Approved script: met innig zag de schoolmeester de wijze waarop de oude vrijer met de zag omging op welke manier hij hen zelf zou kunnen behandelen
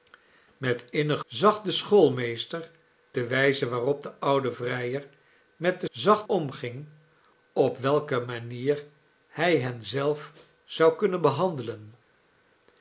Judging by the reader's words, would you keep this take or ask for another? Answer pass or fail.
pass